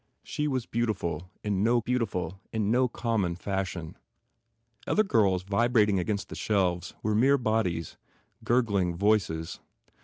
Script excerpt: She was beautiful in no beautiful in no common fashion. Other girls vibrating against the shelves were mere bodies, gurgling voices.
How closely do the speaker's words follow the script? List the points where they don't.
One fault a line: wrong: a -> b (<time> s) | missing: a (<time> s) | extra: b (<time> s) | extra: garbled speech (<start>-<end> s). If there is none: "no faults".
no faults